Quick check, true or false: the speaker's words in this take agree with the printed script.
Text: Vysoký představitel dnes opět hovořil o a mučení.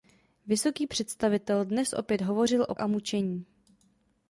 true